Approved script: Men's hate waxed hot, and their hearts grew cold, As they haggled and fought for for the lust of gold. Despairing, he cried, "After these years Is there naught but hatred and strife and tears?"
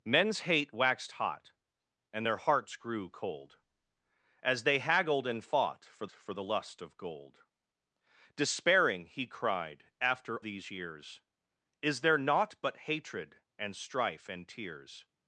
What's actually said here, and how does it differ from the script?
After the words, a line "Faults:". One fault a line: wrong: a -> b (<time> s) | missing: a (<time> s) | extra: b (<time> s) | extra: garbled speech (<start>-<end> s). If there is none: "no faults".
Men's hate waxed hot, and their hearts grew cold, As they haggled and fought for for the lust of gold. Despairing, he cried, "After these years Is there naught but hatred and strife and tears?"
Faults:
no faults